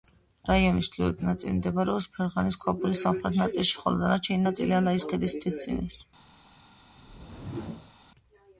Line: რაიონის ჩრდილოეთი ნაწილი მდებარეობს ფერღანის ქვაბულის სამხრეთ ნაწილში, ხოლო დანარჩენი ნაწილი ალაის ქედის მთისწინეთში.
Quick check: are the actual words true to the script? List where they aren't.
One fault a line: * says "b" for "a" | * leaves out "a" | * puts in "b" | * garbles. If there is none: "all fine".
all fine